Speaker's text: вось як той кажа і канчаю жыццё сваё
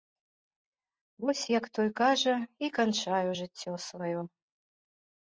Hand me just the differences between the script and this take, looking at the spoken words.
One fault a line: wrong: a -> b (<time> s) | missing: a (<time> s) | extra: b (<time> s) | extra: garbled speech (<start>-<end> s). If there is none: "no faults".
no faults